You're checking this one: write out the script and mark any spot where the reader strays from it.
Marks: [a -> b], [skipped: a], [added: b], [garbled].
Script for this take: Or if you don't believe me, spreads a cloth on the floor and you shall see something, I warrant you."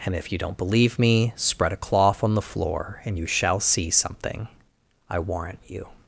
[Or -> And] if you don't believe me, [spreads -> spread] a cloth on the floor and you shall see something, I warrant you."